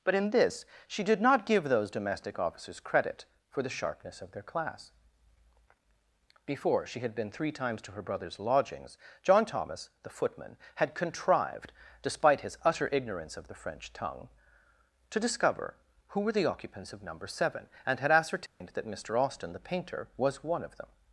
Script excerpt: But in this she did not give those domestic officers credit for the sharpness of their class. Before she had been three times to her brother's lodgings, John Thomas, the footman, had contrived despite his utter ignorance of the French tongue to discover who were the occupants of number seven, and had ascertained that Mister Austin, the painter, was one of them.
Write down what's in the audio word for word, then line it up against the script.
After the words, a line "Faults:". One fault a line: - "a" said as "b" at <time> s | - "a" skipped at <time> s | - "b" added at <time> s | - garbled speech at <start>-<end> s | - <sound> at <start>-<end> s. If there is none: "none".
But in this she did not give those domestic officers credit for the sharpness of their class. Before she had been three times to her brother's lodgings, John Thomas, the footman, had contrived despite his utter ignorance of the French tongue to discover who were the occupants of number seven, and had ascertained that Mister Austin, the painter, was one of them.
Faults:
- dropout at 18.5-18.6 s